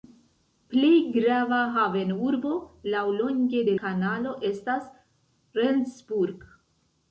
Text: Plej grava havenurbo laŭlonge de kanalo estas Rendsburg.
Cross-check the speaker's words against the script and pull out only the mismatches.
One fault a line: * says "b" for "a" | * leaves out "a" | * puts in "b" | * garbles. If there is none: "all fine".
all fine